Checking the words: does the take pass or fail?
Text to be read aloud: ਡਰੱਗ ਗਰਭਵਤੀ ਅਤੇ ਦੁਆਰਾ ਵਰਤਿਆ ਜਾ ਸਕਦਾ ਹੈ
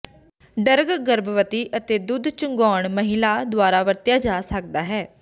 fail